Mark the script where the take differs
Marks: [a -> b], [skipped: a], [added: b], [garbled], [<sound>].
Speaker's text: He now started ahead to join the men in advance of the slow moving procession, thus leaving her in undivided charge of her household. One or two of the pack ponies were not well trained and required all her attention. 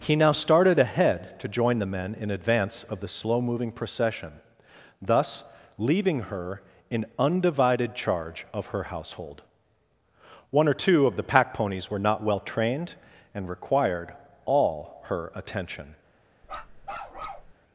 He now started ahead to join the men in advance of the slow moving procession, thus leaving her in undivided charge of her household. One or two of the pack ponies were not well trained and required all her attention. [bark]